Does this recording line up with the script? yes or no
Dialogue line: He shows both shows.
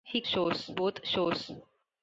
yes